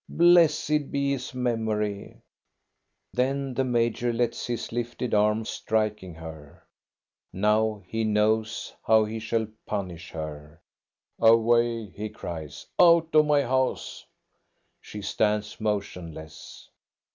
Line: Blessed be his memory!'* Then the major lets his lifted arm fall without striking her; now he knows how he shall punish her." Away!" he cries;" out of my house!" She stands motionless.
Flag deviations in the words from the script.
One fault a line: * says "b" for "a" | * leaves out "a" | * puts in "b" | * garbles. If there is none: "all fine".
* leaves out "fall without"